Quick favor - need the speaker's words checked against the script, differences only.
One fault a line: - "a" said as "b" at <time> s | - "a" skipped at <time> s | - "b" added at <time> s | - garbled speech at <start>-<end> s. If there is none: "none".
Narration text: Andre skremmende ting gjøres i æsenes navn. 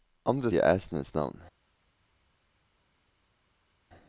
- "skremmende ting gjøres" skipped at 0.5 s